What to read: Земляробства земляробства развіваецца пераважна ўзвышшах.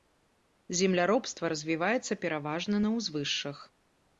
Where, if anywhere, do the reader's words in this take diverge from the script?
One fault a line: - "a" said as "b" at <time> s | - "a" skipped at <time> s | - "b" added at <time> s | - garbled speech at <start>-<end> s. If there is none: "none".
- "земляробства" skipped at 1.5 s
- "на" added at 2.9 s